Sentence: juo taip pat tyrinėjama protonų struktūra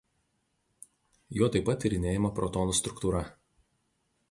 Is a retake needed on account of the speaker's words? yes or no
no